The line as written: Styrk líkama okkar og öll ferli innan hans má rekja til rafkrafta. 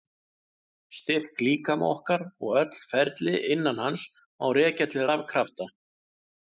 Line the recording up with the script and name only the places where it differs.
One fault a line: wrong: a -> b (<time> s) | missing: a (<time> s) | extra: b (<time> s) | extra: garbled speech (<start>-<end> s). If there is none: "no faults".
no faults